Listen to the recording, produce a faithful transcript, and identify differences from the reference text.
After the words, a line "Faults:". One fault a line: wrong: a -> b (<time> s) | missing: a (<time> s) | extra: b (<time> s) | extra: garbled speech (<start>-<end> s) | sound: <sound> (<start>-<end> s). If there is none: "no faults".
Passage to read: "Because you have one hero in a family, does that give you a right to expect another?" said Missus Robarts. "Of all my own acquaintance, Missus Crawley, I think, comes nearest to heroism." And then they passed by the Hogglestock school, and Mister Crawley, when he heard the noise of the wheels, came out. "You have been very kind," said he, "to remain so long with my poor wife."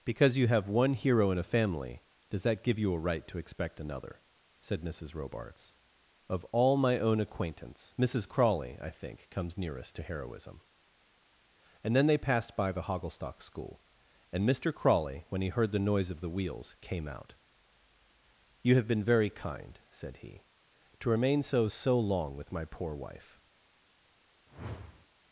"Because you have one hero in a family, does that give you a right to expect another?" said Missus Robarts. "Of all my own acquaintance, Missus Crawley, I think, comes nearest to heroism." And then they passed by the Hogglestock school, and Mister Crawley, when he heard the noise of the wheels, came out. "You have been very kind," said he, "to remain so so long with my poor wife."
Faults:
extra: so (21.6 s)
sound: whoosh (24.5-25.1 s)